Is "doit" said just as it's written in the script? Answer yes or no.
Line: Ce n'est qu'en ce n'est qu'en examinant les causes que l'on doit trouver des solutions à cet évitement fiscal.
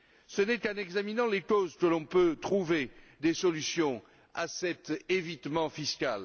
no